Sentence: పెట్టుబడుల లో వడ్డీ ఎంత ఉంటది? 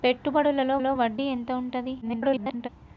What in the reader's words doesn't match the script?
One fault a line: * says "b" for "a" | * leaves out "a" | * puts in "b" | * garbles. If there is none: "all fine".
* puts in "లో"
* garbles